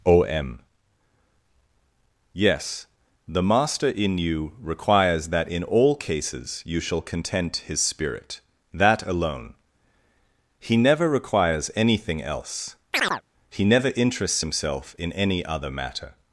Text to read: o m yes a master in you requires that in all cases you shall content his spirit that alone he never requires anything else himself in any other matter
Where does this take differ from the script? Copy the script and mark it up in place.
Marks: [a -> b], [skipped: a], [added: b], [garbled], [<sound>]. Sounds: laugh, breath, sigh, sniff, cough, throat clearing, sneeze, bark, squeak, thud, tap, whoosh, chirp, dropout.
o m yes [a -> the] master in you requires that in all cases you shall content his spirit that alone he never requires anything else [chirp] [added: he never interests] himself in any other matter